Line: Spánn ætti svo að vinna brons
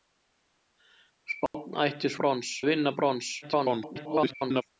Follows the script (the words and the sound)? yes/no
no